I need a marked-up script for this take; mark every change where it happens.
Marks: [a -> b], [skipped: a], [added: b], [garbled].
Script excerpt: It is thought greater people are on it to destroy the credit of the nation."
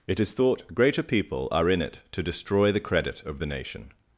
It is thought greater people are [on -> in] it to destroy the credit of the nation."